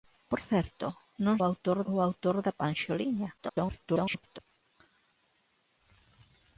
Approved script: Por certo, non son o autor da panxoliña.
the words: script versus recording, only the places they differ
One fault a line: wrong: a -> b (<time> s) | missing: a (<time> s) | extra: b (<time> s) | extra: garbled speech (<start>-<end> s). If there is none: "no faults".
wrong: son -> autor (1.5 s)
extra: garbled speech (3.4-4.4 s)